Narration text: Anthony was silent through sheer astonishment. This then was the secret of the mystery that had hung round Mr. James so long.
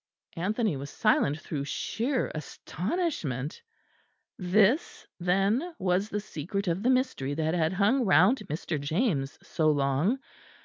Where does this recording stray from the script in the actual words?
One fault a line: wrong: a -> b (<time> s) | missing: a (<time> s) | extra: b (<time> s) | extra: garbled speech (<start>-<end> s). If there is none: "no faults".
no faults